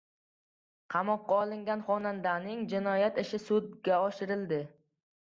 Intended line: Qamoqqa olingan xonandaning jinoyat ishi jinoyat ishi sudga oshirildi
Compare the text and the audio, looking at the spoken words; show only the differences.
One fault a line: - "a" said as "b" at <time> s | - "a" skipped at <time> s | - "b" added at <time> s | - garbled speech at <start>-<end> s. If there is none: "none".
- "jinoyat ishi" skipped at 3.4 s